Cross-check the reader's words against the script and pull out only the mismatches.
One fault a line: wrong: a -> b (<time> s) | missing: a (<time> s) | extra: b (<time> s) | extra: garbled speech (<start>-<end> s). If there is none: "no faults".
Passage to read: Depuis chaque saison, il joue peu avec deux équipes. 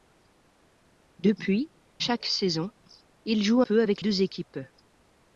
no faults